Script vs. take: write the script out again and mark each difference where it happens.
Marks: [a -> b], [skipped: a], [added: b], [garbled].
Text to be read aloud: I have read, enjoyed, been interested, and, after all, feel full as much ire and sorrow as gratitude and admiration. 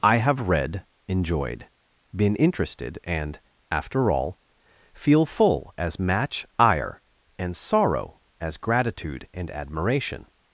I have read, enjoyed, been interested, and, after all, feel full as [much -> match] ire and sorrow as gratitude and admiration.